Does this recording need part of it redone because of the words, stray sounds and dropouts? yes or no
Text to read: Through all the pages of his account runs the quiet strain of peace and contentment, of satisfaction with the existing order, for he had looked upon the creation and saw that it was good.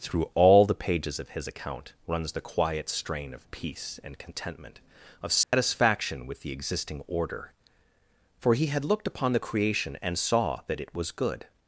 yes